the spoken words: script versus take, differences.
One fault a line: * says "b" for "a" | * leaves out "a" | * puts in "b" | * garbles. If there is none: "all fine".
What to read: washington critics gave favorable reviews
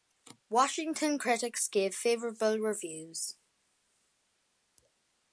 all fine